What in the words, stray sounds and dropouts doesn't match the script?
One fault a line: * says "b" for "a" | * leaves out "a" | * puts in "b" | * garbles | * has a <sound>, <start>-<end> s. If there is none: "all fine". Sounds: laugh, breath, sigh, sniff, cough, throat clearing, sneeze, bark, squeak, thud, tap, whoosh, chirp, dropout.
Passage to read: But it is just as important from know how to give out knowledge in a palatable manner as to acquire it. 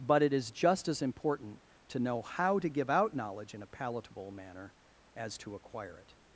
* says "to" for "from"